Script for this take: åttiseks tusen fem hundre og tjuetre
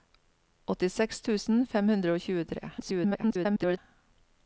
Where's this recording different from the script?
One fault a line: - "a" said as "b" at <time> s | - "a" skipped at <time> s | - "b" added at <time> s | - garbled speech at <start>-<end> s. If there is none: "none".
- garbled speech at 2.8-3.8 s